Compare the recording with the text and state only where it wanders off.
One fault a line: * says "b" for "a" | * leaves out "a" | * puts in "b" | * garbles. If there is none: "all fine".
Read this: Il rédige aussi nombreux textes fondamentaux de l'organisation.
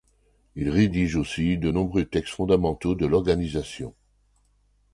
* puts in "de"